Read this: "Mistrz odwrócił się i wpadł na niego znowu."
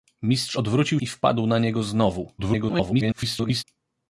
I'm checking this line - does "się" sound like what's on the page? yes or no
no